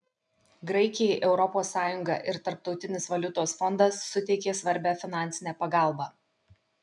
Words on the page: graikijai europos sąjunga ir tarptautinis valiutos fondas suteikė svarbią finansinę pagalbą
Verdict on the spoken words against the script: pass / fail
pass